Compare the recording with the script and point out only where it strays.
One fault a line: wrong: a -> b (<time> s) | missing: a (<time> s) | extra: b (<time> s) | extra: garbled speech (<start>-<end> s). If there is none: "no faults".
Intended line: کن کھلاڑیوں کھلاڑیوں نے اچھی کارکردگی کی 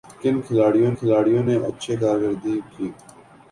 no faults